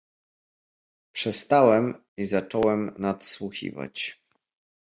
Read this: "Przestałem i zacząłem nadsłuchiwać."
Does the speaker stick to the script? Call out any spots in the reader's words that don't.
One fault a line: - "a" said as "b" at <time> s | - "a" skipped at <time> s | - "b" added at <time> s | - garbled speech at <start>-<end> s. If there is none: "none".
none